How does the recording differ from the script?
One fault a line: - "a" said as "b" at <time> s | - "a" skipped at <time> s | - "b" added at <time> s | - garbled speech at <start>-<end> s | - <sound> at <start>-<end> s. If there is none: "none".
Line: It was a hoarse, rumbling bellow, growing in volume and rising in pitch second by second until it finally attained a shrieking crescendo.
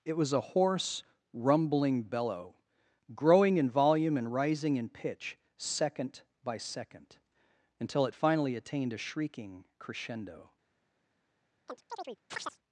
- chirp at 11.7-12.6 s